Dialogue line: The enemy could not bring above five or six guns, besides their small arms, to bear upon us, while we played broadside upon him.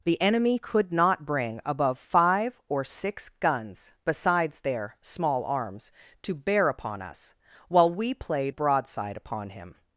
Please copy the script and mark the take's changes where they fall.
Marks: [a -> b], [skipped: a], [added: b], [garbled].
The enemy could not bring above five or six guns, besides their small arms, to bear upon us, while we played broadside upon him.